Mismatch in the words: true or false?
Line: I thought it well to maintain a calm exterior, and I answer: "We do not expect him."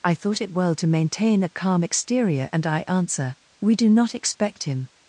false